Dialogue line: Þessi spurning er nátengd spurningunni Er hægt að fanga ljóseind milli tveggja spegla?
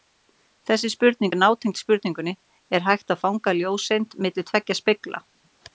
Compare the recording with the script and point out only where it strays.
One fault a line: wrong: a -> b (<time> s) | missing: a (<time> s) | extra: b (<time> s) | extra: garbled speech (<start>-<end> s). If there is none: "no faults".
no faults